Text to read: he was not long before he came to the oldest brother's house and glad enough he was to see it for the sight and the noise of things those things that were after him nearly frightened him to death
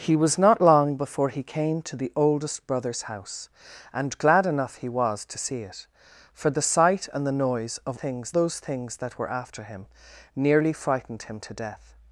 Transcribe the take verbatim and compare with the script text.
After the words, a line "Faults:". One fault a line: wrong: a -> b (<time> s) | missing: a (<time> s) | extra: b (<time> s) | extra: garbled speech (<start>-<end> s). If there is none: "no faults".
he was not long before he came to the oldest brother's house and glad enough he was to see it for the sight and the noise of things those things that were after him nearly frightened him to death
Faults:
no faults